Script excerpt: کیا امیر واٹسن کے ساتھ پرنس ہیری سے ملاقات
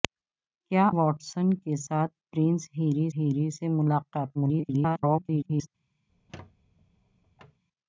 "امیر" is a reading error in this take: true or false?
true